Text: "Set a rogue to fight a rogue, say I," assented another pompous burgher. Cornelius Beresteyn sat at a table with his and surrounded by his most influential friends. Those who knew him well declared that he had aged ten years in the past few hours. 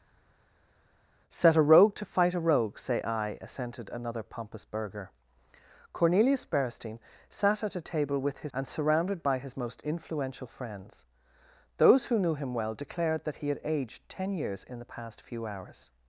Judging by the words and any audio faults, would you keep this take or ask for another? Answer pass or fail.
pass